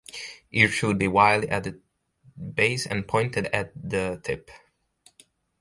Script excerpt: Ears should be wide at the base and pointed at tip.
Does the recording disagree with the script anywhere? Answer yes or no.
yes